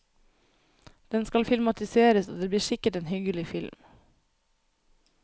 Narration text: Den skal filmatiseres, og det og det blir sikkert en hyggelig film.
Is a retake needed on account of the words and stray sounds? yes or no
yes